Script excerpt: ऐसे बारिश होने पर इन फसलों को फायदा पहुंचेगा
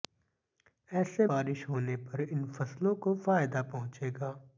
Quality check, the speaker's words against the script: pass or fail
pass